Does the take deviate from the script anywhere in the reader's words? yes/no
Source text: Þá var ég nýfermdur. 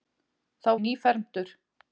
yes